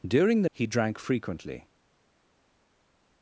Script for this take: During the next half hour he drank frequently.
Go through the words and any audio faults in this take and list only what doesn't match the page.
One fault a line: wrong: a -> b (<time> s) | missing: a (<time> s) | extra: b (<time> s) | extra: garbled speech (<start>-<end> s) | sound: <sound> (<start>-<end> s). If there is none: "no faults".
missing: next half hour (0.5 s)